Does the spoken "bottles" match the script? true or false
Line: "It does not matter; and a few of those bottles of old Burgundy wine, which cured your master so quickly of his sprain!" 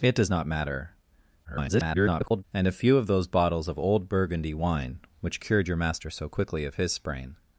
true